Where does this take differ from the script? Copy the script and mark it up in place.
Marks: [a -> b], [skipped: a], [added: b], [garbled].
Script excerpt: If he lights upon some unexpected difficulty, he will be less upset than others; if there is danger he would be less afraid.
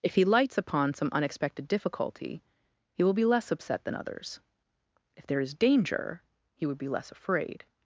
If he lights upon some unexpected difficulty, he will be less upset than others; if there is danger he would be less afraid.